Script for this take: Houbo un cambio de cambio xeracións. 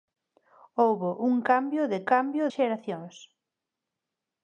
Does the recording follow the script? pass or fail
pass